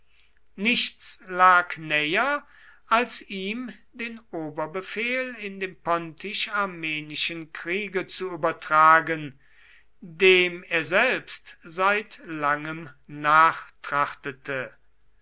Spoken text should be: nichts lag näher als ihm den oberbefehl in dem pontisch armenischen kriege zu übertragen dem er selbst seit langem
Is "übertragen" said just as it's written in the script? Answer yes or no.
yes